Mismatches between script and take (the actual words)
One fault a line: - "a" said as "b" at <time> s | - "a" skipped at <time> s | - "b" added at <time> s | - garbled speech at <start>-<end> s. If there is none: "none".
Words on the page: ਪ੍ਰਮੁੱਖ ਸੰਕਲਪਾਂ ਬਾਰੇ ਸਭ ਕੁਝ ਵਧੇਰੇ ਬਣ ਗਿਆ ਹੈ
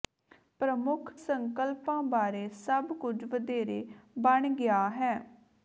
none